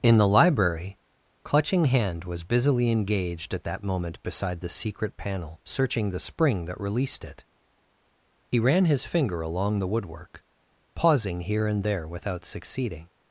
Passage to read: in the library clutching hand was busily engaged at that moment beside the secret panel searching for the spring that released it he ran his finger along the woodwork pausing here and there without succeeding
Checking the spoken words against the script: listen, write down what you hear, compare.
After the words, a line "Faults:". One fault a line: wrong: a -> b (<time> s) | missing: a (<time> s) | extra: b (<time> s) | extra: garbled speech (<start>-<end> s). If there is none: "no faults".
in the library clutching hand was busily engaged at that moment beside the secret panel searching the spring that released it he ran his finger along the woodwork pausing here and there without succeeding
Faults:
missing: for (6.1 s)